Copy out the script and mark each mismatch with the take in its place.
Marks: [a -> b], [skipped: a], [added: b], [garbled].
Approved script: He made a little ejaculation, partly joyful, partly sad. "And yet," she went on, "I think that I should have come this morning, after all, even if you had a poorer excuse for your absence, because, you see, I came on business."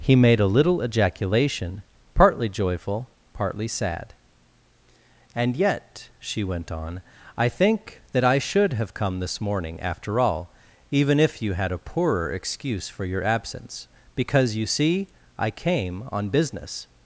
He made a little ejaculation, partly joyful, partly sad. "And yet," she went on, "I think that I should have come this morning, after all, even if you had a poorer excuse for your absence, because, you see, I came on business."